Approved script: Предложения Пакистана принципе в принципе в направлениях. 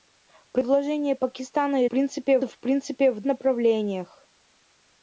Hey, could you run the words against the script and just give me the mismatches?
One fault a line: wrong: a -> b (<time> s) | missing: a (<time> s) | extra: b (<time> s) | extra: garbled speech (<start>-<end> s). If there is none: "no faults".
no faults